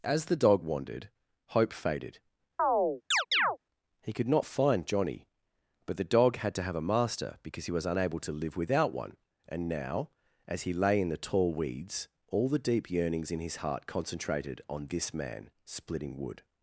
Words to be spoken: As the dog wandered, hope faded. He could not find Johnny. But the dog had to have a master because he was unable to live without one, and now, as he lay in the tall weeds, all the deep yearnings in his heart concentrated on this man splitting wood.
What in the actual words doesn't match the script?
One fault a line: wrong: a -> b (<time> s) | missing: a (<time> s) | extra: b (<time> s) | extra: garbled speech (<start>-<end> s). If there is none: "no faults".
no faults